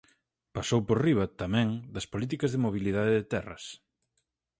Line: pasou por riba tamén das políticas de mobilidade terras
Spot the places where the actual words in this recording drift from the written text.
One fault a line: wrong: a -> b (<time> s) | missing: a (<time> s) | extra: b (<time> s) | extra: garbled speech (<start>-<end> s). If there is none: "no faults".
extra: de (3.2 s)